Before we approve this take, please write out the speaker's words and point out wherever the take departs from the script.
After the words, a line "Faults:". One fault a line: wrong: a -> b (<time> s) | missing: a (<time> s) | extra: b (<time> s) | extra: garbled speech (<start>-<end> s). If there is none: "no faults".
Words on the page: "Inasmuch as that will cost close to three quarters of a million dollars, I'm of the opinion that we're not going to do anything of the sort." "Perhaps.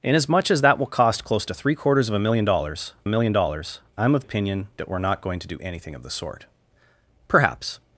"Inasmuch as that will cost close to three quarters of a million dollars million dollars, I'm of opinion that we're not going to do anything of the sort." "Perhaps.
Faults:
extra: million dollars (3.1 s)
missing: the (4.2 s)